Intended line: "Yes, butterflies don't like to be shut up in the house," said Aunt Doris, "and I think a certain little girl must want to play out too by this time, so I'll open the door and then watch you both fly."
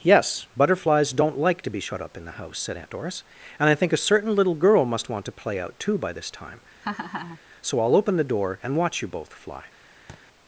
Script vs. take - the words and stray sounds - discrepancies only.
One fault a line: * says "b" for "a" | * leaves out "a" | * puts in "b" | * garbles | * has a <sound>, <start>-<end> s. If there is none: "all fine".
* has a laugh, 6.8-7.4 s
* leaves out "then"
* has a thud, 10.1-10.2 s